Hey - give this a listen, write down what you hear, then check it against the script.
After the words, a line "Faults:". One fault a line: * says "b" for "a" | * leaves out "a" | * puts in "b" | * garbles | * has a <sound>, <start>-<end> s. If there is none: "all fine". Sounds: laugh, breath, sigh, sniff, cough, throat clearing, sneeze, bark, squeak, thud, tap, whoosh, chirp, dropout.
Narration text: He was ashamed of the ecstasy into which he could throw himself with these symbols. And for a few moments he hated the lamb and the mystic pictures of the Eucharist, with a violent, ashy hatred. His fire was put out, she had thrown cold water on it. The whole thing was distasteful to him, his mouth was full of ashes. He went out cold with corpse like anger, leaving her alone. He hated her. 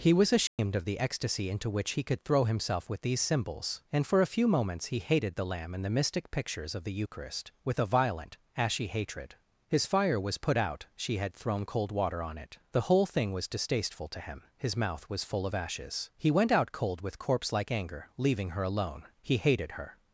He was ashamed of the ecstasy into which he could throw himself with these symbols. And for a few moments he hated the lamb and the mystic pictures of the Eucharist, with a violent, ashy hatred. His fire was put out, she had thrown cold water on it. The whole thing was distasteful to him, his mouth was full of ashes. He went out cold with corpse like anger, leaving her alone. He hated her.
Faults:
* has a dropout, 0.5-0.6 s